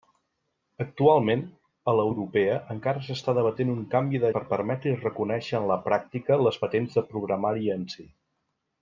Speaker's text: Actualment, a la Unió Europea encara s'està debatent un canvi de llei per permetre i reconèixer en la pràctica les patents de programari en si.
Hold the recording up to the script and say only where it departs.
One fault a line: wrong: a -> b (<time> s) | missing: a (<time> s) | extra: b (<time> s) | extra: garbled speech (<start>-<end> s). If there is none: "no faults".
missing: Unió (2.0 s)
missing: llei (4.3 s)